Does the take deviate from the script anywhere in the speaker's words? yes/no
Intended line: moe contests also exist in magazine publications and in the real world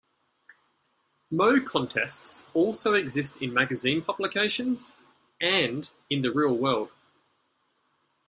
no